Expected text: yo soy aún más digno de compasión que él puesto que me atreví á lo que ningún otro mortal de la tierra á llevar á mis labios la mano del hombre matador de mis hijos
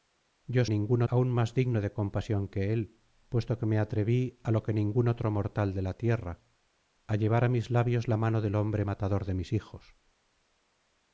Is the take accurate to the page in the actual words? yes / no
no